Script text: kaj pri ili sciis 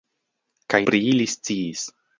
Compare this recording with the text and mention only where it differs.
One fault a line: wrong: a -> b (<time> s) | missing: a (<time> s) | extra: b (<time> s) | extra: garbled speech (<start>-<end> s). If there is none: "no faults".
no faults